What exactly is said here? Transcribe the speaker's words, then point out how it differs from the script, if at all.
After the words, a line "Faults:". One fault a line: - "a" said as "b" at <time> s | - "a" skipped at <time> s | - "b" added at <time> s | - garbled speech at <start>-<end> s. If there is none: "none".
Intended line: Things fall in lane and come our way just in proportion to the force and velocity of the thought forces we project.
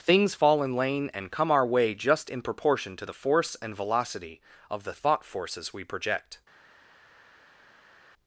Things fall in lane and come our way just in proportion to the force and velocity of the thought forces we project.
Faults:
none